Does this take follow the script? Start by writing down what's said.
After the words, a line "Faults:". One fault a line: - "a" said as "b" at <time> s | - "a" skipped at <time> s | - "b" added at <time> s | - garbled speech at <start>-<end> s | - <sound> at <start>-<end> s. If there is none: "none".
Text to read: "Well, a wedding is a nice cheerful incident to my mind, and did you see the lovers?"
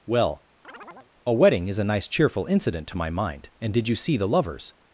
"Well, a wedding is a nice cheerful incident to my mind, and did you see the lovers?"
Faults:
- chirp at 0.6-1.1 s